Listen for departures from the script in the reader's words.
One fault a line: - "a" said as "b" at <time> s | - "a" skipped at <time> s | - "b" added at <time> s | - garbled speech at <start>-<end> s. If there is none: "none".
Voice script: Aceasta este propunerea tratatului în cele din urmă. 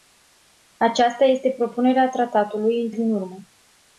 - "cele" skipped at 2.9 s